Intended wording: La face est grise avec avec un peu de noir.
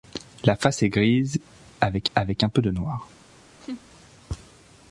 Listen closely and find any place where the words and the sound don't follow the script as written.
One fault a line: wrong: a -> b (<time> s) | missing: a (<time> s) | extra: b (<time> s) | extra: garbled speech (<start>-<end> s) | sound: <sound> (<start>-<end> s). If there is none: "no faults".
sound: laugh (3.6-3.8 s)